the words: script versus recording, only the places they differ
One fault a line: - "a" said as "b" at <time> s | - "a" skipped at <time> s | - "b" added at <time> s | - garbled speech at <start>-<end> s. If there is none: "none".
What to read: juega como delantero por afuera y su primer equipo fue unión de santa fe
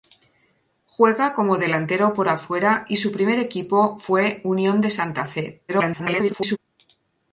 - garbled speech at 5.7-6.6 s